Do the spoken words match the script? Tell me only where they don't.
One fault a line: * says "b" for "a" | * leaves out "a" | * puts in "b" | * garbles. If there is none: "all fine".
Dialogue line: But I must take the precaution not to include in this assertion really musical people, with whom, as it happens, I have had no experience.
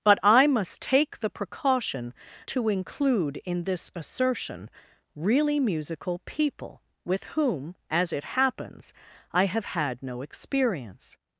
* leaves out "not"